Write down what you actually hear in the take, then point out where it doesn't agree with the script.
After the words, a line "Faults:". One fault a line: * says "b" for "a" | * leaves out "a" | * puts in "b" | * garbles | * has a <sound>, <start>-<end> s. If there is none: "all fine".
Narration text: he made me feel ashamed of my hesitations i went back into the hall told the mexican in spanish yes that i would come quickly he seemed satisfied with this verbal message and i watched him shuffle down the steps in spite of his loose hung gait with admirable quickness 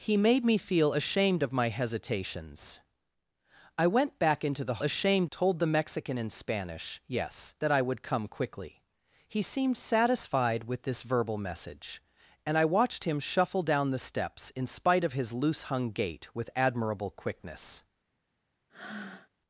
he made me feel ashamed of my hesitations i went back into the ashamed told the mexican in spanish yes that i would come quickly he seemed satisfied with this verbal message and i watched him shuffle down the steps in spite of his loose hung gait with admirable quickness
Faults:
* says "ashamed" for "hall"
* has a breath, 18.7-19.3 s